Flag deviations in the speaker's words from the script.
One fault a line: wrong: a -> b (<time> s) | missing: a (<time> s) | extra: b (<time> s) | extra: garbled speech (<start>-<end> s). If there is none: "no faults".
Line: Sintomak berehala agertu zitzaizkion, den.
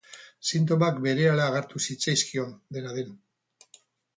extra: dena (2.8 s)